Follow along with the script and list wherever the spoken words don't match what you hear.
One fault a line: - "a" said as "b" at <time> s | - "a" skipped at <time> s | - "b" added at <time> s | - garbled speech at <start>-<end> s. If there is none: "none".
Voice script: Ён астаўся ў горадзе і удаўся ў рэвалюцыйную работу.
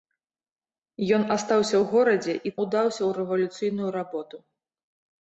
none